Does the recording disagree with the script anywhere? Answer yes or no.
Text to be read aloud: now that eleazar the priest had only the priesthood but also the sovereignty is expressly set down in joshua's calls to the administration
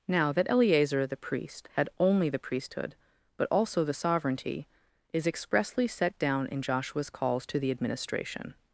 no